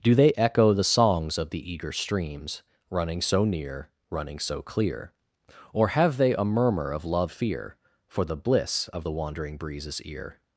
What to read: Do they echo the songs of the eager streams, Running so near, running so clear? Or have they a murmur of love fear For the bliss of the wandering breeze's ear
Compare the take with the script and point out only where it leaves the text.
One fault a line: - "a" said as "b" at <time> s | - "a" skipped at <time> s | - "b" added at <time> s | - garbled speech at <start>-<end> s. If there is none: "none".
none